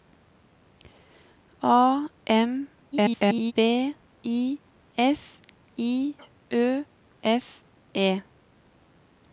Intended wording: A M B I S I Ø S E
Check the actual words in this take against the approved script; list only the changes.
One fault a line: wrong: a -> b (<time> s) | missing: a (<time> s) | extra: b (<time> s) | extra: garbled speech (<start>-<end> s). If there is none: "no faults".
extra: garbled speech (2.9-3.5 s)